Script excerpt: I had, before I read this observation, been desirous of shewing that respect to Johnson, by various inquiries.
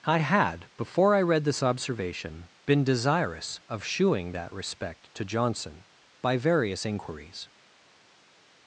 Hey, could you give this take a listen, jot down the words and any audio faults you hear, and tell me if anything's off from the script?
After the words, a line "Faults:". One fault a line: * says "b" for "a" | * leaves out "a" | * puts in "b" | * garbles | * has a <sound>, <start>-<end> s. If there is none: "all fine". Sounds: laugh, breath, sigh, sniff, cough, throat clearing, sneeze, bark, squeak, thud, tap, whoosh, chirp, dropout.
I had, before I read this observation, been desirous of shewing that respect to Johnson, by various inquiries.
Faults:
all fine